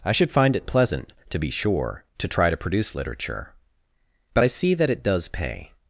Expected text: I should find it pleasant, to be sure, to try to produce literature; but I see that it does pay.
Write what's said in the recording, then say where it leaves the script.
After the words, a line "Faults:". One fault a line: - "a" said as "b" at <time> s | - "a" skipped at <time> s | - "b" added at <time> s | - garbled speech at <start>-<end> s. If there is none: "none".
I should find it pleasant, to be sure, to try to produce literature; but I see that it does pay.
Faults:
none